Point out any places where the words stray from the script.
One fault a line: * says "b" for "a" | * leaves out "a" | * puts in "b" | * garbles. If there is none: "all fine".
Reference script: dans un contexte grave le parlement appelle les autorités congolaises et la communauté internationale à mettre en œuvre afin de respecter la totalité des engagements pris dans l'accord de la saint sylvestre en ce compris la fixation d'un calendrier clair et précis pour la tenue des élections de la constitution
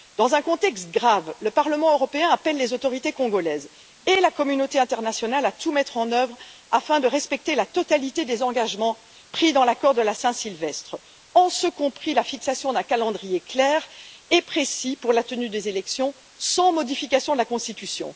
* puts in "européen"
* puts in "tout"
* puts in "sans modification"